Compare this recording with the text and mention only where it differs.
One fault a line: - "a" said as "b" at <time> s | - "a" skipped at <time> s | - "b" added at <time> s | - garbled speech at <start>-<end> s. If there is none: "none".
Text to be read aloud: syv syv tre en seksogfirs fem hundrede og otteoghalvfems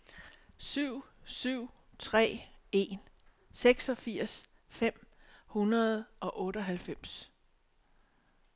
none